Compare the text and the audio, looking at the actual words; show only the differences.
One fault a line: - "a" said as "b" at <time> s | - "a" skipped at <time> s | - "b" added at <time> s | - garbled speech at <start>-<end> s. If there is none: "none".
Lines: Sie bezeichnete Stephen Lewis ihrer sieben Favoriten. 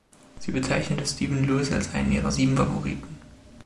- "als einen" added at 1.7 s